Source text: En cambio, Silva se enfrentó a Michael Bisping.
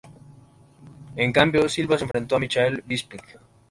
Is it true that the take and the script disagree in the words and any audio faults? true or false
true